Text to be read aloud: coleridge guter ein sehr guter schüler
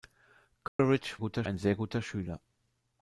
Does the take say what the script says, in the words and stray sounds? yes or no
no